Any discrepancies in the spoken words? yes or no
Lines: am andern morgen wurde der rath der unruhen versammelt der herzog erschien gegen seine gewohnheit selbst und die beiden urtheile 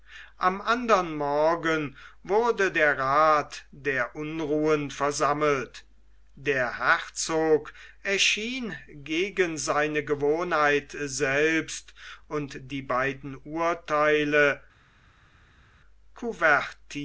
no